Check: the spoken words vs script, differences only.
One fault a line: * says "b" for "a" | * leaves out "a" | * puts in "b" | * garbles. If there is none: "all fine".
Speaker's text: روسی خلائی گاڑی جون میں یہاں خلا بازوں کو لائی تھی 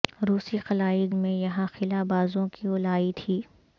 * leaves out "گاڑی جون"